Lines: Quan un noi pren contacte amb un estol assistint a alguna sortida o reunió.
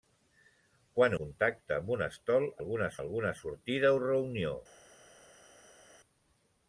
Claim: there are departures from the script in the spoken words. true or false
true